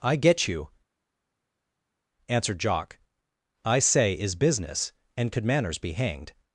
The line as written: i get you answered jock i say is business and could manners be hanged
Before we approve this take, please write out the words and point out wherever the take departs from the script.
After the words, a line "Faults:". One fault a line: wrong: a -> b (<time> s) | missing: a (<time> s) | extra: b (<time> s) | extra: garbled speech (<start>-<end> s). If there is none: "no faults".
i get you answered jock i say is business and could manners be hanged
Faults:
no faults